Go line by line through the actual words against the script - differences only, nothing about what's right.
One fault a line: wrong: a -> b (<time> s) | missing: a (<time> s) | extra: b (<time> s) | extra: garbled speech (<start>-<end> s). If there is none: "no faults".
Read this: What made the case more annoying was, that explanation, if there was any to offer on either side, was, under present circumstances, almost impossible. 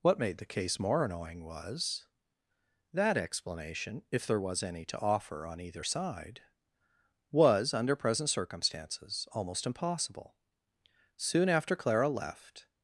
extra: Soon after Clara left (11.2 s)